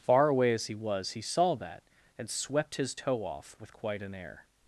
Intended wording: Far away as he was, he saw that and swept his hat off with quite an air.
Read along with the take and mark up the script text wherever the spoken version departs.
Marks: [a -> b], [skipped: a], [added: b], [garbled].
Far away as he was, he saw that and swept his [hat -> toe] off with quite an air.